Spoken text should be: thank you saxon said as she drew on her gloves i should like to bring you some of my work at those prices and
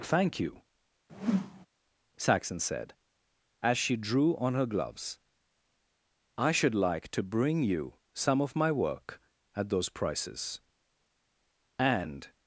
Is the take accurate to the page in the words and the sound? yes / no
no